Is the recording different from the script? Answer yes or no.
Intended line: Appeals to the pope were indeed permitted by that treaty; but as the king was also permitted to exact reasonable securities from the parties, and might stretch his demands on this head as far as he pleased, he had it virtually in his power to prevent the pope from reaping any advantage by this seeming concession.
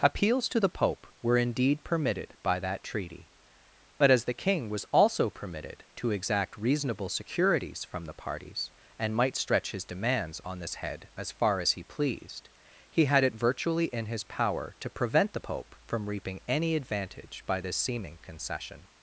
no